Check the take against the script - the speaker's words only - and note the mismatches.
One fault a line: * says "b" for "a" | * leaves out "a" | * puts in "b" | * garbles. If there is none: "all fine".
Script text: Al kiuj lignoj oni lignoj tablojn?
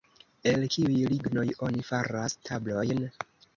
* says "El" for "Al"
* says "faras" for "lignoj"